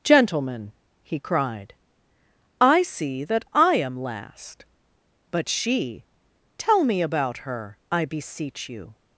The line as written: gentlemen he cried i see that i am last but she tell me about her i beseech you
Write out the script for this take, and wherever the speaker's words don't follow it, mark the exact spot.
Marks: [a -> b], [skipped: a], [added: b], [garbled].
gentlemen he cried i see that i am last but she tell me about her i beseech you